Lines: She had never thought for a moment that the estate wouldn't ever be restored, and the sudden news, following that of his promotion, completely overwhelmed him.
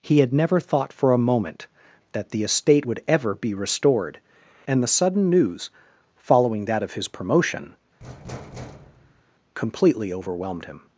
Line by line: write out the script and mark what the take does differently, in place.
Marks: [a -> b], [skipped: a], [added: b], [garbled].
[She -> He] had never thought for a moment that the estate [wouldn't -> would] ever be restored, and the sudden news, following that of his promotion, completely overwhelmed him.